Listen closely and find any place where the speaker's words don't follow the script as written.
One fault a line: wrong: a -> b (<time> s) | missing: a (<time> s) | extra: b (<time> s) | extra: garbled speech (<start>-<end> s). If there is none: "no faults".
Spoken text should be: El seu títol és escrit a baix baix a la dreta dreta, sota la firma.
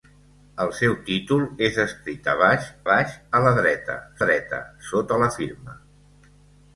no faults